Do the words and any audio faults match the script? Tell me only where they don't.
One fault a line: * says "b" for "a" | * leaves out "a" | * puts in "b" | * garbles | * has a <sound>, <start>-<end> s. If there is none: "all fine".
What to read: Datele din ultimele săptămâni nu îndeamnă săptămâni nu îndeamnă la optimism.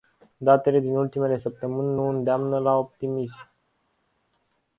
* leaves out "săptămâni nu îndeamnă"